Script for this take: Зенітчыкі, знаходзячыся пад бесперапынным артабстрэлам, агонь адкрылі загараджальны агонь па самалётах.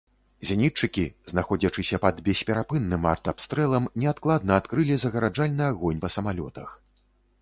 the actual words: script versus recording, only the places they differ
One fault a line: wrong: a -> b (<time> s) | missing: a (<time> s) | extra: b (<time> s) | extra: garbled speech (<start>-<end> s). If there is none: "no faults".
wrong: агонь -> неадкладна (4.0 s)